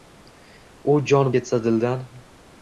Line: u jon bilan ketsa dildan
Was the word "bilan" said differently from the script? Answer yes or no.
yes